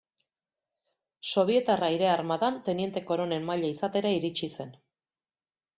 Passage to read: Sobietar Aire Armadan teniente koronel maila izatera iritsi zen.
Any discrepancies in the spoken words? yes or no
no